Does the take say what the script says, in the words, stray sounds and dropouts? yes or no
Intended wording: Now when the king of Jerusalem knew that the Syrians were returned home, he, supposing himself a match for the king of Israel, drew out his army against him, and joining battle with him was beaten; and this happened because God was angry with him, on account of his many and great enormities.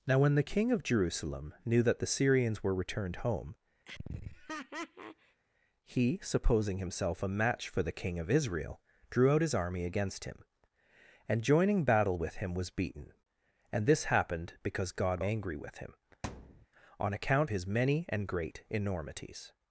no